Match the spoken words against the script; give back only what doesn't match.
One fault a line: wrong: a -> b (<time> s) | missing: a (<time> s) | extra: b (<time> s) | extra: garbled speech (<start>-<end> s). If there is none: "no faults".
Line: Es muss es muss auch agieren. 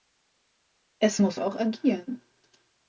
missing: es muss (1.4 s)